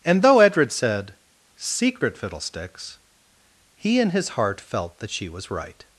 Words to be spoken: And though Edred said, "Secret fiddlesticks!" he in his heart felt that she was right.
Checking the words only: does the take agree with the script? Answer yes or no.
yes